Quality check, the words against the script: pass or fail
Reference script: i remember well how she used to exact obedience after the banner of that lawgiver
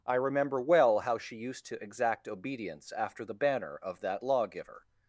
pass